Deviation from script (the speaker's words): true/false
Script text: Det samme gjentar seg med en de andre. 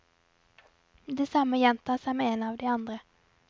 true